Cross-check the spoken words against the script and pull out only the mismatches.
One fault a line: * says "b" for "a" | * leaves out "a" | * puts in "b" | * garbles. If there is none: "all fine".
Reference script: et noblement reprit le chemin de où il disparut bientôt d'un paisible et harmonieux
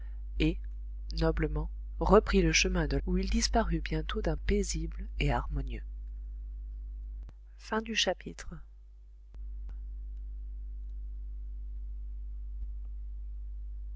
all fine